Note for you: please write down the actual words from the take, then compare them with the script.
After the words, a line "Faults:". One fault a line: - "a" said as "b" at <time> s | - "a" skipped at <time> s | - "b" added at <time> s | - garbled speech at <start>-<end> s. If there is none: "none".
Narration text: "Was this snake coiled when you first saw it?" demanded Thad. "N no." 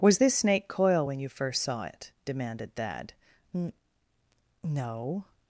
"Was this snake coil when you first saw it?" demanded Thad. "N no."
Faults:
- "coiled" said as "coil" at 0.7 s